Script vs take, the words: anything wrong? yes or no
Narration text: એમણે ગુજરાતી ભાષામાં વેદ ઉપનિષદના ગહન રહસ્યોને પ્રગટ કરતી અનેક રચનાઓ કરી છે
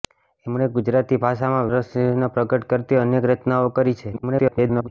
yes